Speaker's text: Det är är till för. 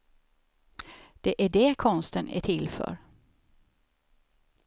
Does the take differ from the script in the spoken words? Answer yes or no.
yes